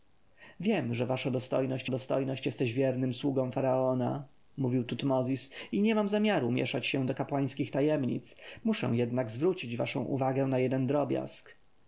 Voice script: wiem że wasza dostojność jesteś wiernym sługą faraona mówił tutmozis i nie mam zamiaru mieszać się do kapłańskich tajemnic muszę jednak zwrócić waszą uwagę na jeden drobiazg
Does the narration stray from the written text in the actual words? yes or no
yes